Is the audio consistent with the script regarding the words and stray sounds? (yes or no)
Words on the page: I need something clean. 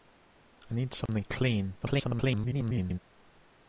no